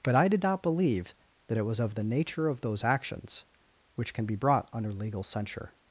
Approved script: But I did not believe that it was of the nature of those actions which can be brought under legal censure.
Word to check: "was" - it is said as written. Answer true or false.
true